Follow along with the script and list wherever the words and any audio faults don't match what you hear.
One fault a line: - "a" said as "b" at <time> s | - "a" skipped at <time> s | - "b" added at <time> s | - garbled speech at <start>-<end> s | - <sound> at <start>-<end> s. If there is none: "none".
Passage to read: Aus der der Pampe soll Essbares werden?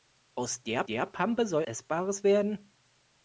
none